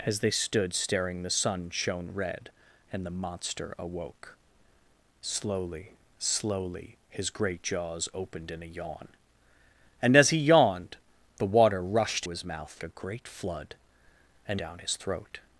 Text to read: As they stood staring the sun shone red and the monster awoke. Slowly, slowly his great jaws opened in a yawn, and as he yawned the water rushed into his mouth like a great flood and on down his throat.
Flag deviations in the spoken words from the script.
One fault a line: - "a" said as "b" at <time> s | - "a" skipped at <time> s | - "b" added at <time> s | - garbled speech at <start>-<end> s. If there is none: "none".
- "into" skipped at 12.3 s
- "like" skipped at 12.7 s
- "on" skipped at 14.6 s